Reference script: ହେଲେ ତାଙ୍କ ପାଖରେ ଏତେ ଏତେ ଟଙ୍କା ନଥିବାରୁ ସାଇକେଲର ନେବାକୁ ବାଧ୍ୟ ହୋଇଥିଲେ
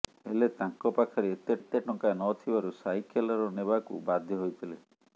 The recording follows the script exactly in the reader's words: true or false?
true